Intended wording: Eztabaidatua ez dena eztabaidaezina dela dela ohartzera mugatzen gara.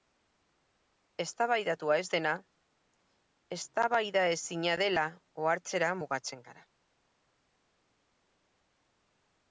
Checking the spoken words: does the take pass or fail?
fail